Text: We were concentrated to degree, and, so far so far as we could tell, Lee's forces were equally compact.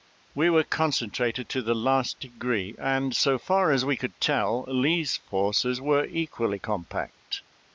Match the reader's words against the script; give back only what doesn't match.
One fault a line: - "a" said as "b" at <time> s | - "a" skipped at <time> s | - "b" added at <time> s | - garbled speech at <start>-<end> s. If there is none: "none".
- "the last" added at 1.6 s
- "so far" skipped at 3.7 s